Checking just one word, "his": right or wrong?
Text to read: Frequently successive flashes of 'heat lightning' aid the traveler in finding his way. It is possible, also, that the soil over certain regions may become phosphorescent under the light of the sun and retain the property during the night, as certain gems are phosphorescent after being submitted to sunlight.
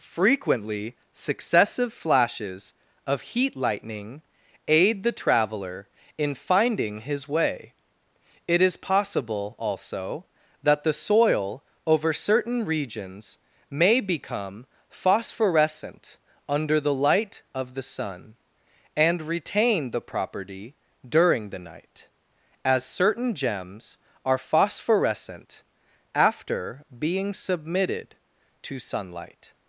right